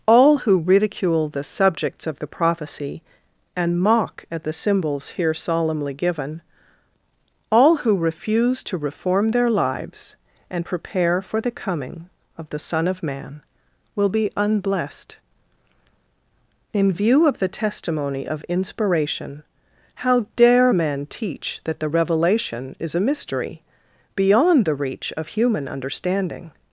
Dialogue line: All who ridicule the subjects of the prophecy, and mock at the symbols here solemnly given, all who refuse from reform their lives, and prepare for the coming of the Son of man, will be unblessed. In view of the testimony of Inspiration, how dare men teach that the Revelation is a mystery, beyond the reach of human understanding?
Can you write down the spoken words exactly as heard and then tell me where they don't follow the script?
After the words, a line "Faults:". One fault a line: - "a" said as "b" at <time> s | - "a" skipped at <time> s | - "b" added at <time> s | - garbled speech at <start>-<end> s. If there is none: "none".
All who ridicule the subjects of the prophecy, and mock at the symbols here solemnly given, all who refuse to reform their lives, and prepare for the coming of the Son of man, will be unblessed. In view of the testimony of Inspiration, how dare men teach that the Revelation is a mystery, beyond the reach of human understanding?
Faults:
- "from" said as "to" at 8.6 s